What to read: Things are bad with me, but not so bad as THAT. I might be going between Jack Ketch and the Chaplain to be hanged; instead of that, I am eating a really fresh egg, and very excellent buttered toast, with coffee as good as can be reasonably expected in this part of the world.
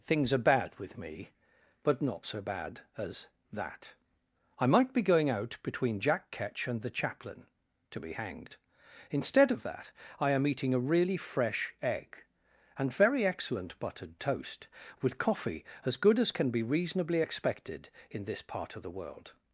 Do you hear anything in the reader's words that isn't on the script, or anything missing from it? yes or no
yes